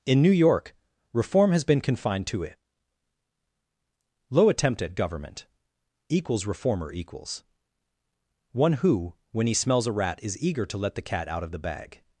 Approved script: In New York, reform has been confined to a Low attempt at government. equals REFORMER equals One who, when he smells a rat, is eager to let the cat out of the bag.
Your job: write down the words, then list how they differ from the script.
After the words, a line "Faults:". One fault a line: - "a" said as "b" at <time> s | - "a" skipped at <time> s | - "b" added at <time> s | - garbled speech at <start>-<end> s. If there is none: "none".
In New York, reform has been confined to it Low attempt at government. equals REFORMER equals One who, when he smells a rat, is eager to let the cat out of the bag.
Faults:
- "a" said as "it" at 2.4 s